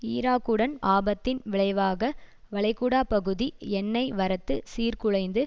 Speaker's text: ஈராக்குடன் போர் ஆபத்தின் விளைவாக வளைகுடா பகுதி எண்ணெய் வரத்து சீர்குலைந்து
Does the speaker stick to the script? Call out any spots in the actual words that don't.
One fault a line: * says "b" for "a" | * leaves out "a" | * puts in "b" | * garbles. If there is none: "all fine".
* leaves out "போர்"